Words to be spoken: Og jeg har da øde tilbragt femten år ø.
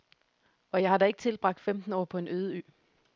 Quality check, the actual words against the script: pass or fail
fail